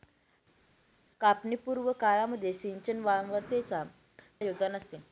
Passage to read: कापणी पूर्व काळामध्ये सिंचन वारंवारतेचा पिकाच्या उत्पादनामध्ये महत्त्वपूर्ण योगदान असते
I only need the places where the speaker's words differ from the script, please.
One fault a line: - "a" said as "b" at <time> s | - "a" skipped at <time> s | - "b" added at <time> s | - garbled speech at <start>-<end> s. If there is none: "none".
- "पिकाच्या उत्पादनामध्ये महत्त्वपूर्ण" skipped at 3.8 s